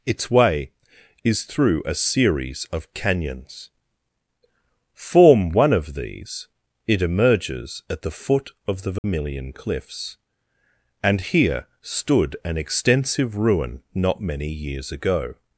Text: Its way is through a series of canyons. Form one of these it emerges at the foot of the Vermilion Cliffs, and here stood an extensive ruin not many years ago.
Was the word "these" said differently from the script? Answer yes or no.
no